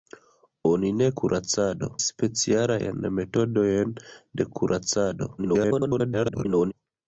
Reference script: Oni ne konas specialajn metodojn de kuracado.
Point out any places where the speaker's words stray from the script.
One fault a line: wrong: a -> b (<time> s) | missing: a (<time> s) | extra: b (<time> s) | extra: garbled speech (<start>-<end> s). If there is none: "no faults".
wrong: konas -> kuracado (1.2 s)
extra: garbled speech (5.4-6.7 s)